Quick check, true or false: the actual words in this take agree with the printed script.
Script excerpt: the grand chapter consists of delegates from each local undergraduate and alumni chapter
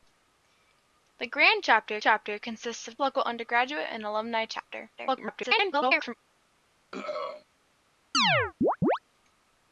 false